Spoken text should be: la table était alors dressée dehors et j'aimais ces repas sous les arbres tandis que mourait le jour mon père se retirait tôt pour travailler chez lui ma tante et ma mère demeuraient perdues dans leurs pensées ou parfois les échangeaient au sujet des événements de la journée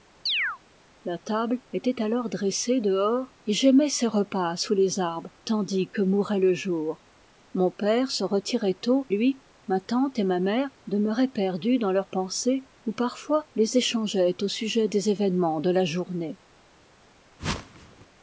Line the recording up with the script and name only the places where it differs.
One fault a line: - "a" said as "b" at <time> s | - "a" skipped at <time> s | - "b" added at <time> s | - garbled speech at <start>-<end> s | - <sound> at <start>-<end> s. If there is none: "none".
- chirp at 0.3-0.6 s
- "pour travailler chez" skipped at 9.1 s
- whoosh at 17.4-18.1 s